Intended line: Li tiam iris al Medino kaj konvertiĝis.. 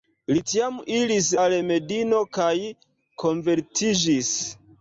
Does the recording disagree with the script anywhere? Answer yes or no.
no